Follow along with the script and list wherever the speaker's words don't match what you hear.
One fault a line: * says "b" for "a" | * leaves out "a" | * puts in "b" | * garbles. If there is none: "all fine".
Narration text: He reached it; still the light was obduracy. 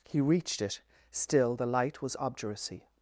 all fine